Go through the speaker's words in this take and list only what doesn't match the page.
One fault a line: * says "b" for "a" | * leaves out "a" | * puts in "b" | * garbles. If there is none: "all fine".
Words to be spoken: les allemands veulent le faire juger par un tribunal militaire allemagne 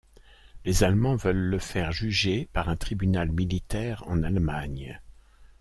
* puts in "en"